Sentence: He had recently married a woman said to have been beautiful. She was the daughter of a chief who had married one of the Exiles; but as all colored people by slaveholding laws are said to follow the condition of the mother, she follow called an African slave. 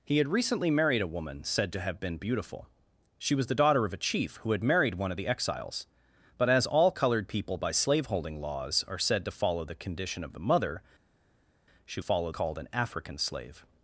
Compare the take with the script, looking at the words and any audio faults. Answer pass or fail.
pass